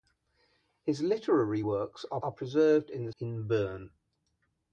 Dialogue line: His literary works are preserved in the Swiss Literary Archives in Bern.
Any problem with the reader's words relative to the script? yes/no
yes